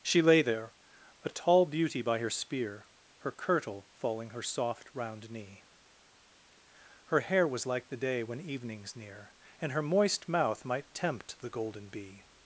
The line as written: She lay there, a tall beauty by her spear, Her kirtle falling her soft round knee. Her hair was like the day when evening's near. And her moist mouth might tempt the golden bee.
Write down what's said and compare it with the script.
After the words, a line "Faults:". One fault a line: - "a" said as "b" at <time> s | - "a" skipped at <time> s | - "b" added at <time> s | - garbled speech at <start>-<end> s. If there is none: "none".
She lay there, a tall beauty by her spear, Her kirtle falling her soft round knee. Her hair was like the day when evening's near. And her moist mouth might tempt the golden bee.
Faults:
none